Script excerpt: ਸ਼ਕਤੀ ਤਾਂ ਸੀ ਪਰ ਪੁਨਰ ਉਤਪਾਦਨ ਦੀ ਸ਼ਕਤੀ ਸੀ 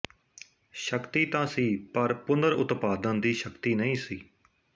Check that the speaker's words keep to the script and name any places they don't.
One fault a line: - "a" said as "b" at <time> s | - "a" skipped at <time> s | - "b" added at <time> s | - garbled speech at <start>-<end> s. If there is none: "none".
- "ਨਹੀਂ" added at 3.7 s